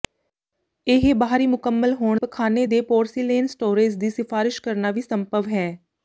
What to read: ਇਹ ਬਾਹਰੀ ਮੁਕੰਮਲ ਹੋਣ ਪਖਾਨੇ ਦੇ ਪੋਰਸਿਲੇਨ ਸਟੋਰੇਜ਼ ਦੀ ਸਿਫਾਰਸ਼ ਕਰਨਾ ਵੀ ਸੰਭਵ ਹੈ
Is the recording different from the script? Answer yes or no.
no